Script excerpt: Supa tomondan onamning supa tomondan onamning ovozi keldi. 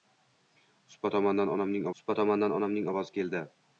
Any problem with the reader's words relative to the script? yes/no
no